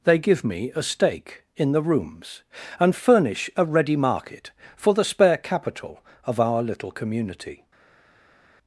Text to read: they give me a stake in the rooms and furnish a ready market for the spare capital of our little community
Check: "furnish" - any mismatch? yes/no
no